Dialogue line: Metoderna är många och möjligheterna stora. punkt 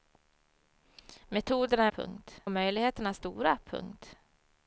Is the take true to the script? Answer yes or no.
no